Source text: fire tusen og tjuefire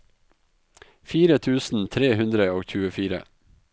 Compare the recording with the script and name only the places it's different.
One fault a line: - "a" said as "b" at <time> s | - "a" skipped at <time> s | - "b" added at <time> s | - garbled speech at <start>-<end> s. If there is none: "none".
- "tre hundre" added at 2.0 s